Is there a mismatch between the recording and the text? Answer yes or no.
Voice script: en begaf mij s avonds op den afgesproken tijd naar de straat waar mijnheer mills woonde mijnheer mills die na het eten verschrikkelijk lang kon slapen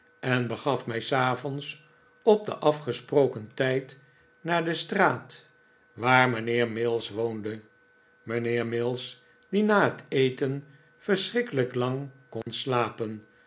no